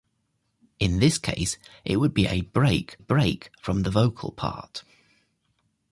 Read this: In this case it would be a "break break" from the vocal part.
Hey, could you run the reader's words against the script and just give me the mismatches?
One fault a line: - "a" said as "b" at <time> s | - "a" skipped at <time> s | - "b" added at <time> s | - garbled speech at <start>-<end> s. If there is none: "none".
none